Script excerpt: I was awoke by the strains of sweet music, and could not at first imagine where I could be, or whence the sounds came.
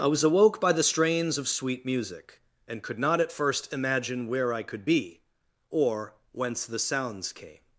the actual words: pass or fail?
pass